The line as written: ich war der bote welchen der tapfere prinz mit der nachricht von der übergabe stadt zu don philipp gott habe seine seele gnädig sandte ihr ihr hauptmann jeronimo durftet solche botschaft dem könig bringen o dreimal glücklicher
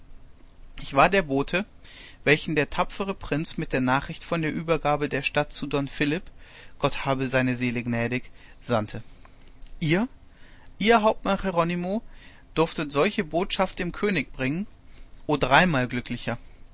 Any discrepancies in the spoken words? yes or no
yes